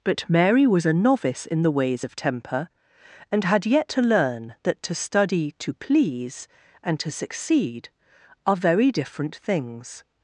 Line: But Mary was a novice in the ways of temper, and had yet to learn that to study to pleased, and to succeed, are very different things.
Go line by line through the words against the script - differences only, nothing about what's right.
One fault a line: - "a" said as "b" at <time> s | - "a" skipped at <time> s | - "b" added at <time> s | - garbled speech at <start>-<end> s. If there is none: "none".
- "pleased" said as "please" at 5.7 s